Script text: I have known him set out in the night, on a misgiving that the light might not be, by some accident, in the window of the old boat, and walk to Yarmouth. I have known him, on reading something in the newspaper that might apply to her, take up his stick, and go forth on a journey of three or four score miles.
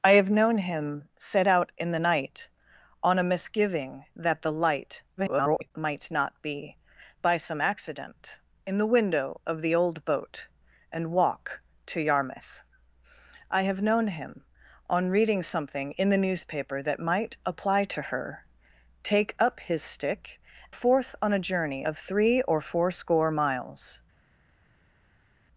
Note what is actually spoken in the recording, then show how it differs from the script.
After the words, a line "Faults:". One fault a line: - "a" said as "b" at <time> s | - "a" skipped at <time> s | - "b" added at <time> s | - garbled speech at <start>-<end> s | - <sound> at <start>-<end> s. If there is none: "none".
I have known him set out in the night, on a misgiving that the light [garbled] might not be, by some accident, in the window of the old boat, and walk to Yarmouth. I have known him, on reading something in the newspaper that might apply to her, take up his stick, forth on a journey of three or four score miles.
Faults:
- garbled speech at 5.2-5.7 s
- "and go" skipped at 20.4 s